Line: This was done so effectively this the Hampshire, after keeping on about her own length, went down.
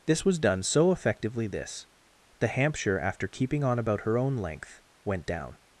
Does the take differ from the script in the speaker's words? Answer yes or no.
no